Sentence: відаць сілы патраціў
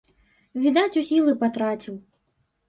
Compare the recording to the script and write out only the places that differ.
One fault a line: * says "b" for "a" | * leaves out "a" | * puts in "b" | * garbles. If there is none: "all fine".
all fine